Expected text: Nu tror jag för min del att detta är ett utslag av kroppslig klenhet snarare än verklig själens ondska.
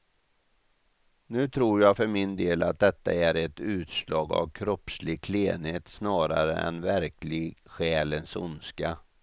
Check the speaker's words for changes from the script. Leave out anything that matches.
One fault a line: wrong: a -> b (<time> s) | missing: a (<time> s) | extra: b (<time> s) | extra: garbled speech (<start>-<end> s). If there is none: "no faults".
no faults